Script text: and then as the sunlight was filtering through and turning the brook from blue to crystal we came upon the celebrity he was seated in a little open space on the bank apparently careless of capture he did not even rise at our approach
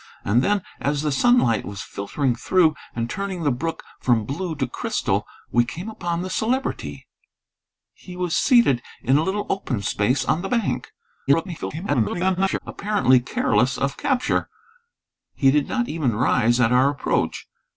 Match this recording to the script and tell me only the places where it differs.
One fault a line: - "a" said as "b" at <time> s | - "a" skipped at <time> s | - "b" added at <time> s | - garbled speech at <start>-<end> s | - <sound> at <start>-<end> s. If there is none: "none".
- garbled speech at 11.3-12.6 s